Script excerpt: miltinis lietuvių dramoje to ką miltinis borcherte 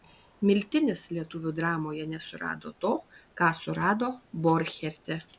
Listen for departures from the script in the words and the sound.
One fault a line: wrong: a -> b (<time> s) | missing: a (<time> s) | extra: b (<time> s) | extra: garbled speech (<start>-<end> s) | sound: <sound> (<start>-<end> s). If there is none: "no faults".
extra: nesurado (2.1 s)
wrong: miltinis -> surado (3.6 s)